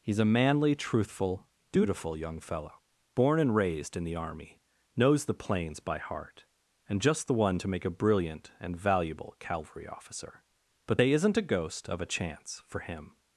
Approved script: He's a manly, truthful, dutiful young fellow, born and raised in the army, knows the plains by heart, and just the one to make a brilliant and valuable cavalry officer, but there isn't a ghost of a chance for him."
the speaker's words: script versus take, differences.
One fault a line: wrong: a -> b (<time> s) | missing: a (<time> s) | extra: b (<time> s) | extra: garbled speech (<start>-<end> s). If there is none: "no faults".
wrong: there -> they (11.0 s)